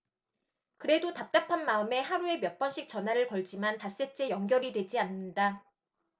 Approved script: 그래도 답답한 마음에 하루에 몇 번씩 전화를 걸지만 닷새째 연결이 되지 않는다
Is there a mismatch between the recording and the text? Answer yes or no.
no